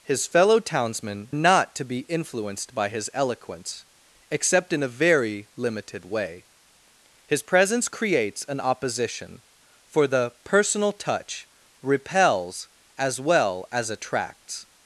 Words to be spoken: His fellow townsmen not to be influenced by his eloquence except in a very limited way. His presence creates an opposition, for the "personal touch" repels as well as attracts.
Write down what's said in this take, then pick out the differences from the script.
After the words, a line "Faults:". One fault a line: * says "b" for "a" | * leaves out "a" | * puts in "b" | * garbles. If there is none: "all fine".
His fellow townsmen not to be influenced by his eloquence except in a very limited way. His presence creates an opposition, for the "personal touch" repels as well as attracts.
Faults:
all fine